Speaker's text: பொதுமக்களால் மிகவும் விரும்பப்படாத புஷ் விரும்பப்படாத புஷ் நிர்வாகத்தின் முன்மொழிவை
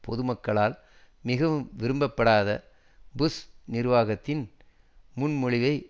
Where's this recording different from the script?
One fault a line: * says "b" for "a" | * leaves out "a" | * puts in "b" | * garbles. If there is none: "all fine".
* leaves out "விரும்பப்படாத புஷ்"